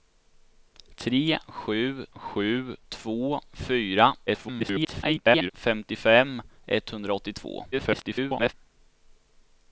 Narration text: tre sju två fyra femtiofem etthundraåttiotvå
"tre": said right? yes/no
yes